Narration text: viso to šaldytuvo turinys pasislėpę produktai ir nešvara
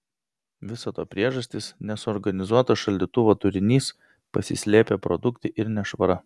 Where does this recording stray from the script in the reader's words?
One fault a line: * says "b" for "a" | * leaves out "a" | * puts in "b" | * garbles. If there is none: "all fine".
* puts in "priežastys nesuorganizuotas"